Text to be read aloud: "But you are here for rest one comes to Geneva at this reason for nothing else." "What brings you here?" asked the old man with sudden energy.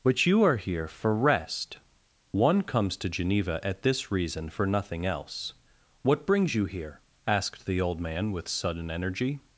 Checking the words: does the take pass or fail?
pass